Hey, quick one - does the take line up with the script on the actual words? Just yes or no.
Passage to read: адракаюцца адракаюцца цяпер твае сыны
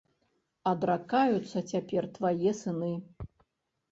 no